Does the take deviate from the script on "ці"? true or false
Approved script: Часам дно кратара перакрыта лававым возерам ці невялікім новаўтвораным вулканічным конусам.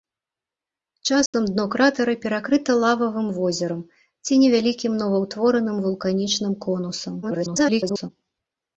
false